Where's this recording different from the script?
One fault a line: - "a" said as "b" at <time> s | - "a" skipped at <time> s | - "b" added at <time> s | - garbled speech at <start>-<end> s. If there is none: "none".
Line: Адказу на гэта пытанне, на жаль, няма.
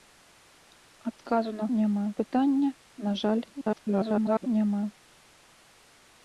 - "гэта" said as "няма" at 1.8 s
- garbled speech at 3.6-4.5 s